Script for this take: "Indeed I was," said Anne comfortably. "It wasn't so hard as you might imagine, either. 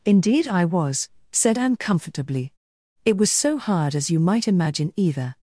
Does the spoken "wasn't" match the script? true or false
false